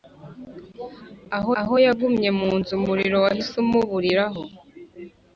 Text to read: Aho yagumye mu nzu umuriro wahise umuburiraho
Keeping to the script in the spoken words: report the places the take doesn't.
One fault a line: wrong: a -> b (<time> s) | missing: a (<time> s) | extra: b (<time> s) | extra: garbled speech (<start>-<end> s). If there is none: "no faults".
extra: aho (1.6 s)